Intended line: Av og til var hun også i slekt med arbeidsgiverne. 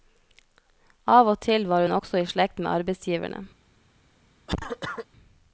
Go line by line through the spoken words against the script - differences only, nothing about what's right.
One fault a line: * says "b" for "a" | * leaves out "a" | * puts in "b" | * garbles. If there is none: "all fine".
all fine